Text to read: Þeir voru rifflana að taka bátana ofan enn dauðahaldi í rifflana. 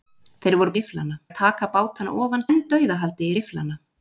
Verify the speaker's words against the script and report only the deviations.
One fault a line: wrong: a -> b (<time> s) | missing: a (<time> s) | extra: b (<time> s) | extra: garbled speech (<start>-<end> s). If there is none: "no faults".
no faults